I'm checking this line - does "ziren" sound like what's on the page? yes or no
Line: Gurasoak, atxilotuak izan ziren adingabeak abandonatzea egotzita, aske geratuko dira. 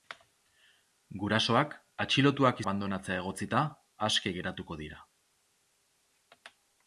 no